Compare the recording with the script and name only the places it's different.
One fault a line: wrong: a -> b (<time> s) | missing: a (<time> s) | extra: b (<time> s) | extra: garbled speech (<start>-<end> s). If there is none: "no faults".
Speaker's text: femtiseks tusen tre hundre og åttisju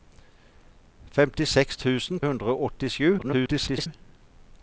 missing: tre (2.2 s)
extra: garbled speech (3.2-3.9 s)